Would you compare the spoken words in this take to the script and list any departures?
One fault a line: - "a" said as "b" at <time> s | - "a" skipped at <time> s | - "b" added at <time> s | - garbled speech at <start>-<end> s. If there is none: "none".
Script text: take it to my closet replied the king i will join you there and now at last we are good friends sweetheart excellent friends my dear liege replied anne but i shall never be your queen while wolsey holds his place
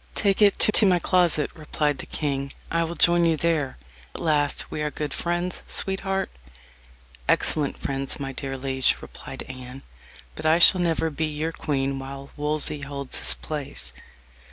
- "to" added at 0.7 s
- "and now" skipped at 3.8 s